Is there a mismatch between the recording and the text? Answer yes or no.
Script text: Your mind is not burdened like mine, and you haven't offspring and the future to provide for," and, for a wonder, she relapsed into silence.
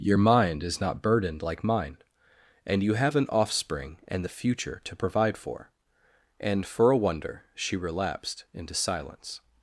yes